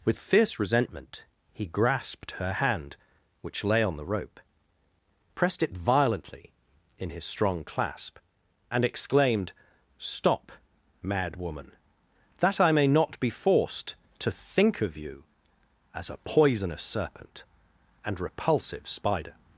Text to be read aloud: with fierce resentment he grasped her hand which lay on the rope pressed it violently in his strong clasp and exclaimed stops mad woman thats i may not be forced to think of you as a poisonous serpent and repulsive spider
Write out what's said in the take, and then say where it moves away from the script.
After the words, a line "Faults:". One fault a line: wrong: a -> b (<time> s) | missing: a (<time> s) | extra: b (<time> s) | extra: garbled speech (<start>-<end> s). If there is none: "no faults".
with fierce resentment he grasped her hand which lay on the rope pressed it violently in his strong clasp and exclaimed stop mad woman that i may not be forced to think of you as a poisonous serpent and repulsive spider
Faults:
wrong: stops -> stop (10.0 s)
wrong: thats -> that (12.4 s)